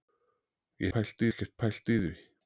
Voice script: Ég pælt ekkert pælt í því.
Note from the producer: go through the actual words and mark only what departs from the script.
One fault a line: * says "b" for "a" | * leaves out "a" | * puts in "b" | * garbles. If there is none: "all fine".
all fine